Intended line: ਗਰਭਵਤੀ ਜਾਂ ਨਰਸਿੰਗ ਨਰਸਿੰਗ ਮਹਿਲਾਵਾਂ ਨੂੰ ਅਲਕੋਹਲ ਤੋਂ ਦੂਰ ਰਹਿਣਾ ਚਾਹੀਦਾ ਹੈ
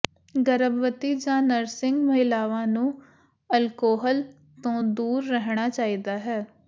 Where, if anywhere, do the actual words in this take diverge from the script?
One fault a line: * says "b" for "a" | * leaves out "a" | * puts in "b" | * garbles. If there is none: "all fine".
* leaves out "ਨਰਸਿੰਗ"